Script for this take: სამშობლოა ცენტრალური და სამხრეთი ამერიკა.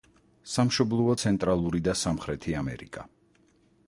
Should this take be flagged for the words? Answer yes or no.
no